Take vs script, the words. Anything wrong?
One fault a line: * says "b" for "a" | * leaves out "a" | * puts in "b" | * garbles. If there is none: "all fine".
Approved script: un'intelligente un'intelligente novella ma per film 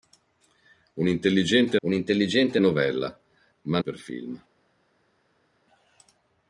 all fine